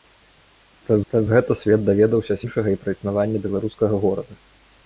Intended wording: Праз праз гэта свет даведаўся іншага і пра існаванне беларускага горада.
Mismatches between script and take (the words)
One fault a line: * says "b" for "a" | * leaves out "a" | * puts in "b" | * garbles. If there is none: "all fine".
all fine